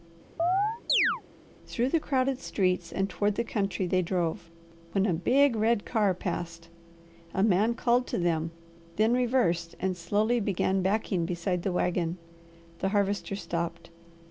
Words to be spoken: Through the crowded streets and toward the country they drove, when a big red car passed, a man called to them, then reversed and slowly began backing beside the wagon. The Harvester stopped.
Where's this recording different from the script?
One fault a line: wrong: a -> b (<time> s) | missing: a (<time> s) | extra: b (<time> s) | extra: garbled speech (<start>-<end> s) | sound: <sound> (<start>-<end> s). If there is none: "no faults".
sound: chirp (0.4-1.2 s)